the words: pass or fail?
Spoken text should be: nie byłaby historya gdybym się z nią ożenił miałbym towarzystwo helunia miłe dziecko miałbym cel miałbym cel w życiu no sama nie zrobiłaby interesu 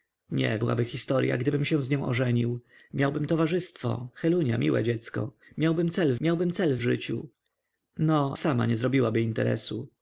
pass